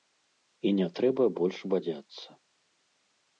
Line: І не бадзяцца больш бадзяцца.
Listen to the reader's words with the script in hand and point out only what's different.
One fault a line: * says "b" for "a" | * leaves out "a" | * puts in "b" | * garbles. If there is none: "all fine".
* says "трэба" for "бадзяцца"